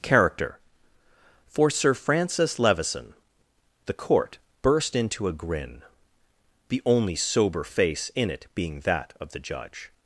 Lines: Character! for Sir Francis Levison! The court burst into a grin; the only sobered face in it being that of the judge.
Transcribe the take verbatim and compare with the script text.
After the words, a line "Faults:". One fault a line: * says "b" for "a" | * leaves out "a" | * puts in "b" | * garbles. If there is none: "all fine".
Character! for Sir Francis Levison! The court burst into a grin; the only sober face in it being that of the judge.
Faults:
* says "sober" for "sobered"